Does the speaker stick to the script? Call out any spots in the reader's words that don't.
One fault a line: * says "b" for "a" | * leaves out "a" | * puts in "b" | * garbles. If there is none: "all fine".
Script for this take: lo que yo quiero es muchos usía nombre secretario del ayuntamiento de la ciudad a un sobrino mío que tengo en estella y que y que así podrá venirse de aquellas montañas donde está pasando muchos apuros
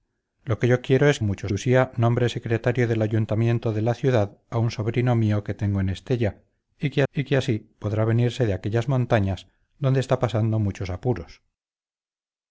all fine